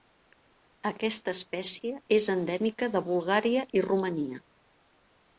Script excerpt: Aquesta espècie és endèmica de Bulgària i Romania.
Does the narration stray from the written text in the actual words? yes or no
no